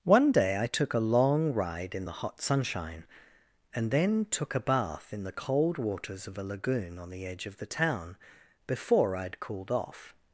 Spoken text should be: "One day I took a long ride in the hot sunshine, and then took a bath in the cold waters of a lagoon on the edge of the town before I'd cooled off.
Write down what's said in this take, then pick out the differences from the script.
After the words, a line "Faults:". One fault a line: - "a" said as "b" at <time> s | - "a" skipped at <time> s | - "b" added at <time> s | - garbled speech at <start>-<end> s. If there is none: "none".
"One day I took a long ride in the hot sunshine, and then took a bath in the cold waters of a lagoon on the edge of the town before I'd cooled off.
Faults:
none